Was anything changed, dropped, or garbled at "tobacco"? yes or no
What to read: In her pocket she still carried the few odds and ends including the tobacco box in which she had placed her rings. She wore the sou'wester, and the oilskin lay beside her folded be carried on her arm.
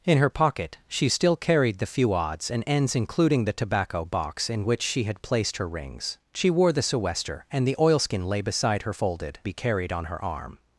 no